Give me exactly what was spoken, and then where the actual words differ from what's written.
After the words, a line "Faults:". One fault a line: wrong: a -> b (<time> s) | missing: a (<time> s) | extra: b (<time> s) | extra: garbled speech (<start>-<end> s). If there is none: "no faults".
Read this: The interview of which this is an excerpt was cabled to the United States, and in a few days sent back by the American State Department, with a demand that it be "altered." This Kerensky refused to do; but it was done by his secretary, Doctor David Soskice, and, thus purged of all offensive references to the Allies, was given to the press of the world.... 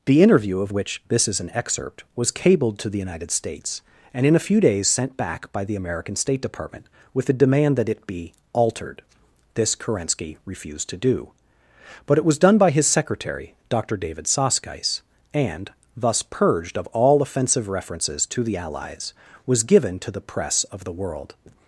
The interview of which this is an excerpt was cabled to the United States, and in a few days sent back by the American State Department, with a demand that it be "altered." This Kerensky refused to do; but it was done by his secretary, Doctor David Soskice, and, thus purged of all offensive references to the Allies, was given to the press of the world....
Faults:
no faults